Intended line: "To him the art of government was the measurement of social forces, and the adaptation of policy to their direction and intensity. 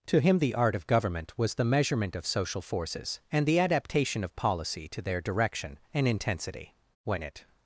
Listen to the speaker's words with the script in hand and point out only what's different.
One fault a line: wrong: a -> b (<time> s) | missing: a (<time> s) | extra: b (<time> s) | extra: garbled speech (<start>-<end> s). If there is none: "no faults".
extra: When it (7.0 s)